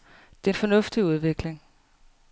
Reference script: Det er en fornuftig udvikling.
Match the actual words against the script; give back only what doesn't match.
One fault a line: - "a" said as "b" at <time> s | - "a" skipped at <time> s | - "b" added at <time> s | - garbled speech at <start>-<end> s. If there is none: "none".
none